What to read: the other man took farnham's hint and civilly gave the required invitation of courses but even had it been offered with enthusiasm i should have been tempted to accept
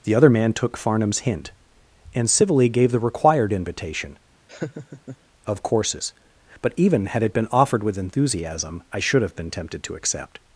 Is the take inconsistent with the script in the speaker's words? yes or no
no